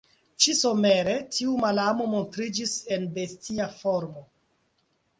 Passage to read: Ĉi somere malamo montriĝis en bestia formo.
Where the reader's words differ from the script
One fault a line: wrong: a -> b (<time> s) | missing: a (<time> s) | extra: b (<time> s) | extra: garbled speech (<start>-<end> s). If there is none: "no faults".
extra: tiu (1.4 s)